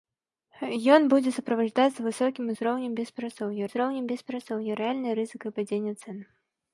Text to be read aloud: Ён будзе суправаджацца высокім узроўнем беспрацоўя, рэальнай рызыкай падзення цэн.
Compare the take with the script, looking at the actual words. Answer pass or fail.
fail